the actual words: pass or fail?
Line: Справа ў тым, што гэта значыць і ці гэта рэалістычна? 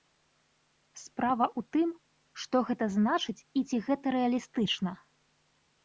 pass